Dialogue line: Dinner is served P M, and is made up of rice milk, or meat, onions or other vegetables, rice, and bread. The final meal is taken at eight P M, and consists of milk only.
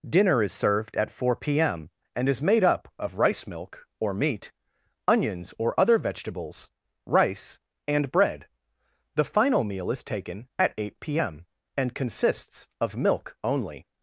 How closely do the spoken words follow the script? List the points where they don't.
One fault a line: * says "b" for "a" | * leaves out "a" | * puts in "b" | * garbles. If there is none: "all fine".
* puts in "at four"